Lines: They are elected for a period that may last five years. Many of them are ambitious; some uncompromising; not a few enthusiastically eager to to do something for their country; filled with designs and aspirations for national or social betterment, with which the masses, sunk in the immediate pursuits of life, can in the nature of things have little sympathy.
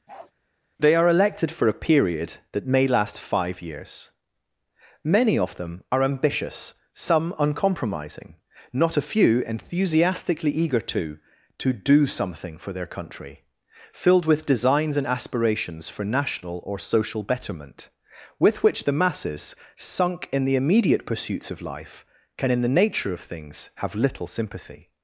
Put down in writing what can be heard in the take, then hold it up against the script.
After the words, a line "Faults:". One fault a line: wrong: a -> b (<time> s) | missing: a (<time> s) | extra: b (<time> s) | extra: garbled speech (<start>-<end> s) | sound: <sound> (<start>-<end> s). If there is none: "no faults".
They are elected for a period that may last five years. Many of them are ambitious; some uncompromising; not a few enthusiastically eager to to do something for their country; filled with designs and aspirations for national or social betterment, with which the masses, sunk in the immediate pursuits of life, can in the nature of things have little sympathy.
Faults:
sound: bark (0.1-0.3 s)